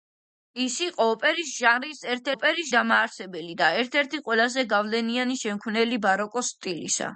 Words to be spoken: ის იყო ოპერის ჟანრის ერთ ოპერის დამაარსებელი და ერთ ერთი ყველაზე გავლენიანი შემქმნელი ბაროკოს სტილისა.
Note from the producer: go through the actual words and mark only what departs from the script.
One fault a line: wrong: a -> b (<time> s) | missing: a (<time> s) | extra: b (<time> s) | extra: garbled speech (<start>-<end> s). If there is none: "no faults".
no faults